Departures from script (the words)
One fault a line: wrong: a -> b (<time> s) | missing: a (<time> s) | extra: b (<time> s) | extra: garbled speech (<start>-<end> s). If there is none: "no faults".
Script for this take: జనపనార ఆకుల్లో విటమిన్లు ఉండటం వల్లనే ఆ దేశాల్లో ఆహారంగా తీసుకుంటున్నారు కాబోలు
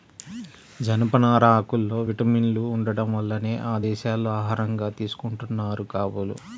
no faults